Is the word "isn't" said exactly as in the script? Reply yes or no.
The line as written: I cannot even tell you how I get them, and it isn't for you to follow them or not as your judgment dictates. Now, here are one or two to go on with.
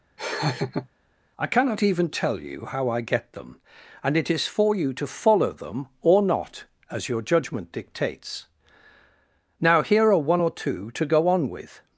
no